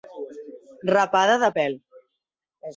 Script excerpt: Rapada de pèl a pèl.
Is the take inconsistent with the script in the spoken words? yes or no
yes